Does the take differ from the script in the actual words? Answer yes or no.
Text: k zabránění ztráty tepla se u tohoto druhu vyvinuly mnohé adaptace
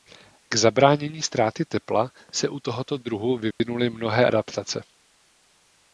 no